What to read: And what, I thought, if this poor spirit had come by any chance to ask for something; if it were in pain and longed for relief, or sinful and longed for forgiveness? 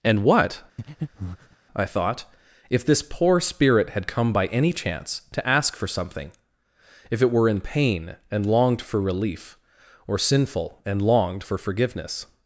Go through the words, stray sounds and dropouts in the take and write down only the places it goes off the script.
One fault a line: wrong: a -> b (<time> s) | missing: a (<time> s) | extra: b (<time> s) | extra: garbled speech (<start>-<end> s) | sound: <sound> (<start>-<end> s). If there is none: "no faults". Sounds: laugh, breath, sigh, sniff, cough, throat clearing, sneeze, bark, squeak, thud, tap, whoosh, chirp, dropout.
sound: breath (0.8-1.6 s)